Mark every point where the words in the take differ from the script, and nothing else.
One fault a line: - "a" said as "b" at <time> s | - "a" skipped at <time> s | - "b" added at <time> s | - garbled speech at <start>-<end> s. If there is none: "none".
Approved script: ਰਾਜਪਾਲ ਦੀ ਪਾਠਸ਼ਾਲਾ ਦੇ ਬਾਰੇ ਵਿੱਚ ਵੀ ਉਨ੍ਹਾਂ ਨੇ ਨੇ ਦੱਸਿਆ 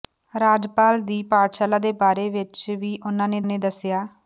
none